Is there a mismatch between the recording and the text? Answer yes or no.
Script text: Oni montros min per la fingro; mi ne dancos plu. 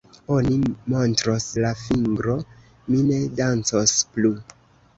yes